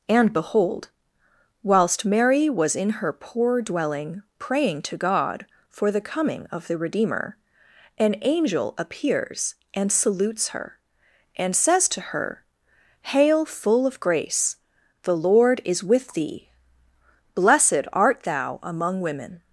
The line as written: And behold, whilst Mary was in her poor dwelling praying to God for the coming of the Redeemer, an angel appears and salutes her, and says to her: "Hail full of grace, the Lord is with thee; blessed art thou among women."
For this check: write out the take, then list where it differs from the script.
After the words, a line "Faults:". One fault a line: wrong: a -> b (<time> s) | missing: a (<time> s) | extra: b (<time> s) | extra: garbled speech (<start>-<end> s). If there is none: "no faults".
And behold, whilst Mary was in her poor dwelling praying to God for the coming of the Redeemer, an angel appears and salutes her, and says to her: "Hail full of grace, the Lord is with thee; blessed art thou among women."
Faults:
no faults